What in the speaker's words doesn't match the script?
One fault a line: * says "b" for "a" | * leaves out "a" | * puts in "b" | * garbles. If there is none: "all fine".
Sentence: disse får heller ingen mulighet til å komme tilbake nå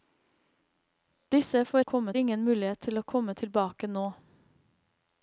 * says "komme" for "heller"